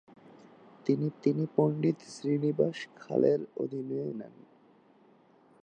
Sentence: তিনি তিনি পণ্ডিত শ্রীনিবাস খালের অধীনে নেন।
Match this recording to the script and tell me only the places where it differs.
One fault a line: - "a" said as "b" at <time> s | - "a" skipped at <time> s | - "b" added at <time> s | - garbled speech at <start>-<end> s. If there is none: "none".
none